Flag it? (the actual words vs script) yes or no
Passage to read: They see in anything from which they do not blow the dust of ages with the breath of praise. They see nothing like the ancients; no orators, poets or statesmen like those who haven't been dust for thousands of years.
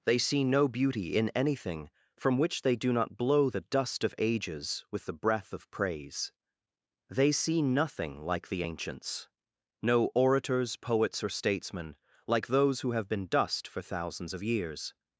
yes